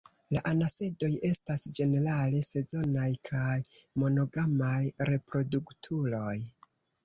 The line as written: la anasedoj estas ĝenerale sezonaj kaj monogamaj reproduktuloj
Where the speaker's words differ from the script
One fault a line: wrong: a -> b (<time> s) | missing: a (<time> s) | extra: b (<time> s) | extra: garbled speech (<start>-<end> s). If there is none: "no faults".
no faults